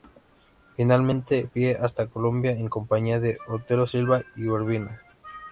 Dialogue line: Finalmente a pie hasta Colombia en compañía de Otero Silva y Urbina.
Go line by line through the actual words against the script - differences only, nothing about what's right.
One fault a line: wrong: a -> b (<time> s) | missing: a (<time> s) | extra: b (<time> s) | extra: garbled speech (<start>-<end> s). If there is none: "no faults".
no faults